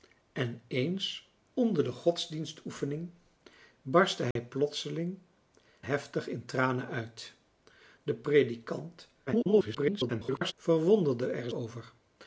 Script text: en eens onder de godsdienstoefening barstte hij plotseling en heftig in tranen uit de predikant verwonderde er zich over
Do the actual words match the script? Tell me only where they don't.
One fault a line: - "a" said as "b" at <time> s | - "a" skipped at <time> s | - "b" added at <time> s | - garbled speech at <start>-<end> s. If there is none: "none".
- "en" skipped at 5.2 s
- garbled speech at 9.3-10.5 s
- "zich" skipped at 11.5 s